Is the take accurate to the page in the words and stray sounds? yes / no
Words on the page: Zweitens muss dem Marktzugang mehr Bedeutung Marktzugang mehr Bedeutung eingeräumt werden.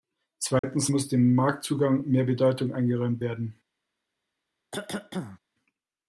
no